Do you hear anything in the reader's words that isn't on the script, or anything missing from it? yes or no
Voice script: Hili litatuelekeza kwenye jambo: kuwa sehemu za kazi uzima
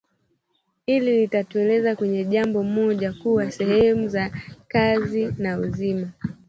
yes